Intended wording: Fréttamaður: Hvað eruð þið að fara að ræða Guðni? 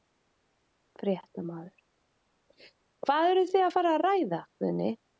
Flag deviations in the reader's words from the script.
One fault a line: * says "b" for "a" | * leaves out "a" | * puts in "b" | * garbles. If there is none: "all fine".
all fine